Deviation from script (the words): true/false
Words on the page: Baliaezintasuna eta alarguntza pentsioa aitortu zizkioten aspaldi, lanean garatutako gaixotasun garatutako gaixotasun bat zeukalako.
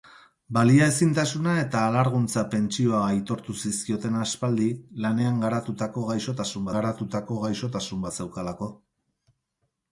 false